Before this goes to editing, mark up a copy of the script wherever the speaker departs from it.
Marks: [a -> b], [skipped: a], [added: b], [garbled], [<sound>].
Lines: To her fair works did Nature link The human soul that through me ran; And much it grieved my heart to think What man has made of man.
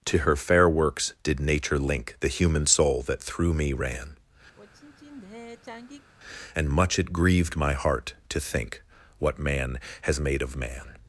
To her fair works did Nature link The human soul that through me ran; [sigh] And much it grieved my heart to think What man has made of man.